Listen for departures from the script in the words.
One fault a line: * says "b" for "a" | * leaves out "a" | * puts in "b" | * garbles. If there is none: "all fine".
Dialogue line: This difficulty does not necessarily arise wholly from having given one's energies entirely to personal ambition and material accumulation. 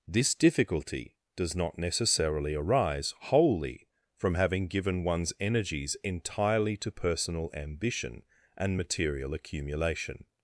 all fine